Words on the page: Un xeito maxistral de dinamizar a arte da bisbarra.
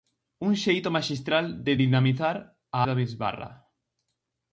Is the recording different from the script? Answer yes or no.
yes